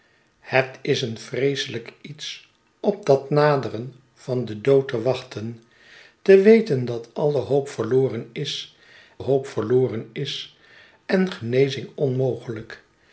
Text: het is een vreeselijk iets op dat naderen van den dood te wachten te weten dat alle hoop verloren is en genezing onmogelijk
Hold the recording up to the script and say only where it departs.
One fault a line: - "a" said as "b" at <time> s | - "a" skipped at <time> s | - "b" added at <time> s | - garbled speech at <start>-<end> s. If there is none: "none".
- "hoop verloren is" added at 9.2 s